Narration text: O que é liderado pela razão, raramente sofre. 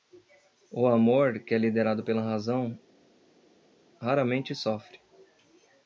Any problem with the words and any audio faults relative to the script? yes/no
yes